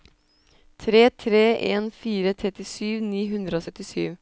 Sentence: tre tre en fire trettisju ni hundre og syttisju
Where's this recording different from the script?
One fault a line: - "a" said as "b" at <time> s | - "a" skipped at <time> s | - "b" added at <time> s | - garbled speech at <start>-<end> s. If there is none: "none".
none